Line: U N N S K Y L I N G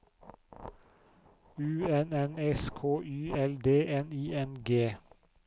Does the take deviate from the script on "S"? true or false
false